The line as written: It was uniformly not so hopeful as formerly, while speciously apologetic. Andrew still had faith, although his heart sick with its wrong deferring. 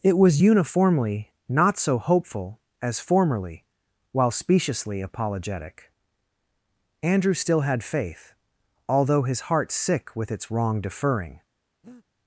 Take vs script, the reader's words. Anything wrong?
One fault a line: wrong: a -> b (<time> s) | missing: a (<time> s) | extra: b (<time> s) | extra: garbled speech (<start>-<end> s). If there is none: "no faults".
no faults